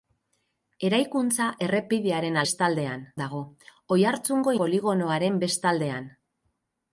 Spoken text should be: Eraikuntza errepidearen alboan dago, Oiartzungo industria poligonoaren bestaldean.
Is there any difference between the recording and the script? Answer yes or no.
yes